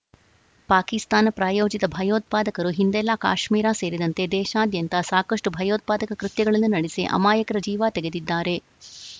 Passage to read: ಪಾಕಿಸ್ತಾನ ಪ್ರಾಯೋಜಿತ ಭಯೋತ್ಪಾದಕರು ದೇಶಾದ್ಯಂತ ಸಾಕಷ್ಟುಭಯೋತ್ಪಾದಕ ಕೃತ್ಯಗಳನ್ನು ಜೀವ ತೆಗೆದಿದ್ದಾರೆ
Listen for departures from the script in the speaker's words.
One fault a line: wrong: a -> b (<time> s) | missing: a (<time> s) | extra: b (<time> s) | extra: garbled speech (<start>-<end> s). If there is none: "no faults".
extra: ಹಿಂದೆಲ್ಲಾ ಕಾಶ್ಮೀರ ಸೇರಿದಂತೆ (2.8 s)
extra: ನಡೆಸಿ ಅಮಾಯಕರ (6.8 s)